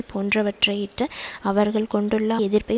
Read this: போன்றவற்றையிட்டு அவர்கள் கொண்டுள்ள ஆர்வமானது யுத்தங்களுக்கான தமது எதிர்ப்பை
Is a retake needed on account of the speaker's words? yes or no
yes